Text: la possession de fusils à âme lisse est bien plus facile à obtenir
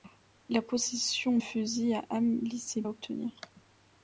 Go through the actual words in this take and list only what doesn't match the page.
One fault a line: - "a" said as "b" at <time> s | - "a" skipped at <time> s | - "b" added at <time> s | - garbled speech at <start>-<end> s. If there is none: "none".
- "de" skipped at 1.4 s
- "bien plus facile" skipped at 2.8 s